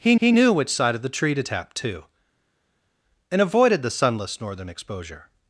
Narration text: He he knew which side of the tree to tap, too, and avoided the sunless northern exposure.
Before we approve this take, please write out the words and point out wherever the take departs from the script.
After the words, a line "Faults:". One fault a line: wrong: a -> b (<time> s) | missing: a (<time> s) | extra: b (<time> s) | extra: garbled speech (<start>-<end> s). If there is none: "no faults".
He he knew which side of the tree to tap, too, and avoided the sunless northern exposure.
Faults:
no faults